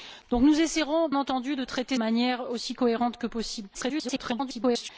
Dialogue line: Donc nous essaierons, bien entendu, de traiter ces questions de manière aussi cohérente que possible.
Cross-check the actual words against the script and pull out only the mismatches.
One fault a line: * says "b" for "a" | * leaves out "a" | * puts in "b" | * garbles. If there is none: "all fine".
* leaves out "bien"
* leaves out "ces questions de"
* garbles